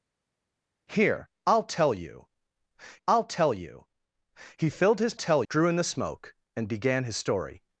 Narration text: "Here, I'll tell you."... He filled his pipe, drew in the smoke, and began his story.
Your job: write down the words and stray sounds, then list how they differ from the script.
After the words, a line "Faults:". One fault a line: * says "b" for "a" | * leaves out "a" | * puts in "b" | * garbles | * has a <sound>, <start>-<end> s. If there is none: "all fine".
"Here, I'll tell you I'll tell you."... He filled his tell, drew in the smoke, and began his story.
Faults:
* puts in "I'll tell you"
* says "tell" for "pipe"